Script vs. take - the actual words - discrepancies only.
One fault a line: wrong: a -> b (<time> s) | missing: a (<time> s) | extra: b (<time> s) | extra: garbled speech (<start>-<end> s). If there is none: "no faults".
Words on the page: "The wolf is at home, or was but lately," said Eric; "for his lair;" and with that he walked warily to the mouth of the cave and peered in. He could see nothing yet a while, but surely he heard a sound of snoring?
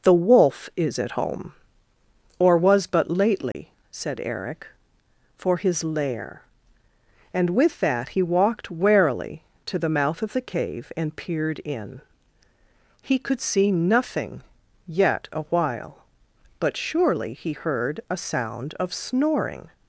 no faults